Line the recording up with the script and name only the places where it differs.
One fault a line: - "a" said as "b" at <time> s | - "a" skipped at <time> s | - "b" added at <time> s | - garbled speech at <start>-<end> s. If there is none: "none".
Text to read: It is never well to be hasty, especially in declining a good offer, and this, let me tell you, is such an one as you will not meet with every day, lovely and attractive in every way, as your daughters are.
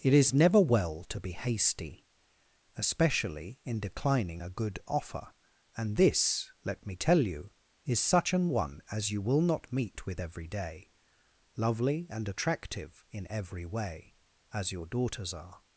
none